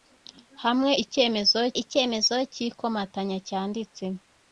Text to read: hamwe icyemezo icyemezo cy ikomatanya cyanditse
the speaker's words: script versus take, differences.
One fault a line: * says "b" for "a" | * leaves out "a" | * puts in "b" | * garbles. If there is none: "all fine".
all fine